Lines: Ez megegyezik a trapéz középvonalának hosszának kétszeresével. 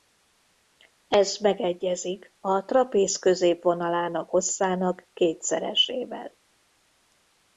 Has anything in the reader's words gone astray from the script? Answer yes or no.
no